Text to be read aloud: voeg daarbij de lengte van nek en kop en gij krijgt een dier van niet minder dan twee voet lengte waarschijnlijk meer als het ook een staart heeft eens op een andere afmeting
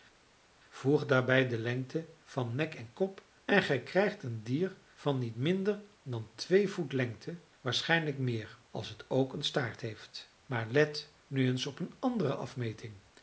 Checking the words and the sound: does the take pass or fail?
fail